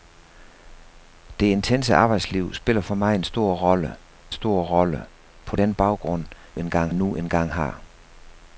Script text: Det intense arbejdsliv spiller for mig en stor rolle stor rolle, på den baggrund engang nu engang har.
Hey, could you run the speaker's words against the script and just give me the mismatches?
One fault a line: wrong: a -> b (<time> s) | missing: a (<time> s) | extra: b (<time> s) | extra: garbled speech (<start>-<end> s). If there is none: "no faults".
no faults